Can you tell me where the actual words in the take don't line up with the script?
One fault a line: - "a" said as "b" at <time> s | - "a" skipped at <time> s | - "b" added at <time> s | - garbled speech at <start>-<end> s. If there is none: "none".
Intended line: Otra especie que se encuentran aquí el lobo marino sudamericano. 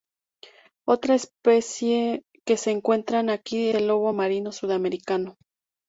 none